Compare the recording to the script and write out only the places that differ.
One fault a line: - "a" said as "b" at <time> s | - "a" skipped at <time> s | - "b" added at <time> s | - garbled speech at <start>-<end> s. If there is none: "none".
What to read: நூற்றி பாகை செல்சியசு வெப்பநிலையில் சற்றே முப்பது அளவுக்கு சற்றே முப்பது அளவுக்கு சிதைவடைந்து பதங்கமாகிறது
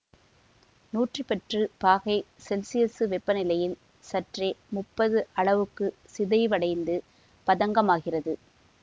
- "பத்து" added at 1.2 s
- "சற்றே முப்பது அளவுக்கு" skipped at 5.9 s